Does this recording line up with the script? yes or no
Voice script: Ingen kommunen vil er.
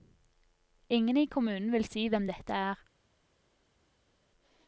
no